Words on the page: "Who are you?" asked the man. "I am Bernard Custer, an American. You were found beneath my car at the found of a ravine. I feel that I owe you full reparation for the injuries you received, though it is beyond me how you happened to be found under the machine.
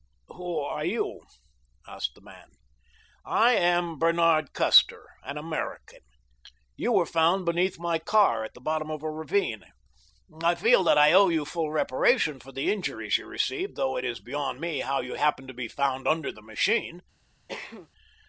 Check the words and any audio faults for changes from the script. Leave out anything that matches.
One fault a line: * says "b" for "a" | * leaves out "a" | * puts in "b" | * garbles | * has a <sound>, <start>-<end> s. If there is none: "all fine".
* says "bottom" for "found"
* has a cough, 17.5-17.9 s